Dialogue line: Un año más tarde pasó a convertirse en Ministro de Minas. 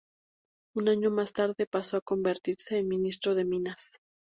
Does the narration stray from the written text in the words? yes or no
no